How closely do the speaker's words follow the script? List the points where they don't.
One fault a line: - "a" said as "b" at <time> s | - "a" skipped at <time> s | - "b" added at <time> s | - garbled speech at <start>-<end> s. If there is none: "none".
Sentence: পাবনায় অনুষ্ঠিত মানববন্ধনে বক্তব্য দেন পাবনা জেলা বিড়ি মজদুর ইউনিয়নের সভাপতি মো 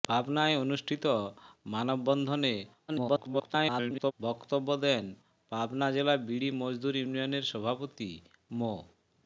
- garbled speech at 2.9-4.1 s